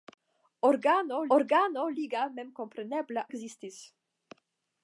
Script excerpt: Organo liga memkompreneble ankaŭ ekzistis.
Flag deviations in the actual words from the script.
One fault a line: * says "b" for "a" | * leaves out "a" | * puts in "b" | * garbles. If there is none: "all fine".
* puts in "organo"
* leaves out "ankaŭ"